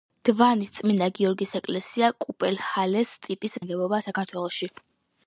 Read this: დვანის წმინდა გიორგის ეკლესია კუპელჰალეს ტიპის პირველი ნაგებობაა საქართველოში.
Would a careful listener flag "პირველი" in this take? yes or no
yes